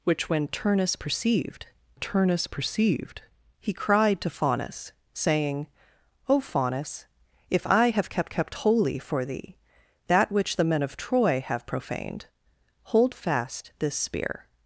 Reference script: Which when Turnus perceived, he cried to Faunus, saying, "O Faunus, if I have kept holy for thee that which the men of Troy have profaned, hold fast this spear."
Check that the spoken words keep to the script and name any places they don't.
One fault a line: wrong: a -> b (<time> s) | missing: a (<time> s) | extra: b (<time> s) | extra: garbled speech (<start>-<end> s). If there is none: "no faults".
extra: Turnus perceived (2.0 s)
extra: kept (8.3 s)